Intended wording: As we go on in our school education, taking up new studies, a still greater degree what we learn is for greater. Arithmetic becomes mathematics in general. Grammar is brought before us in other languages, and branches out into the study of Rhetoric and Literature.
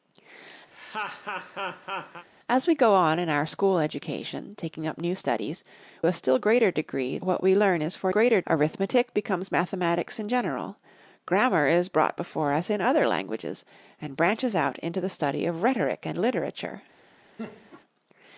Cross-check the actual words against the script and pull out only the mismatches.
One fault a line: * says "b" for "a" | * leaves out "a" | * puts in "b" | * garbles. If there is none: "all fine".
all fine